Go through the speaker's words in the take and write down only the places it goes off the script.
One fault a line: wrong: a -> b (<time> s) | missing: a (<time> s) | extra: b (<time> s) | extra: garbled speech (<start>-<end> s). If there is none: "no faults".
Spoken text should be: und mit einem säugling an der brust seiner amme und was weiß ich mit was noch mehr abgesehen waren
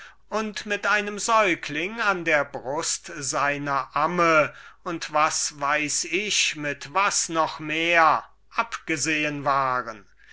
no faults